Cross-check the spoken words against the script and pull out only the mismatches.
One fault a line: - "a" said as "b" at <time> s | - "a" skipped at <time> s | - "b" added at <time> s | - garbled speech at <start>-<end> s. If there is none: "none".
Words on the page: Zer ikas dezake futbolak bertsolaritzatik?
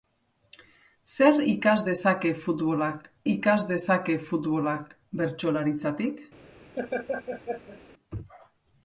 - "ikas dezake futbolak" added at 3.3 s